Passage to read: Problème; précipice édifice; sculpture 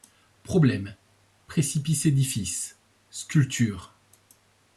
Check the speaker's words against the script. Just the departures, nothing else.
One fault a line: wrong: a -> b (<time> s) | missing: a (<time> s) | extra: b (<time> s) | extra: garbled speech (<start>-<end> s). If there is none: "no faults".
no faults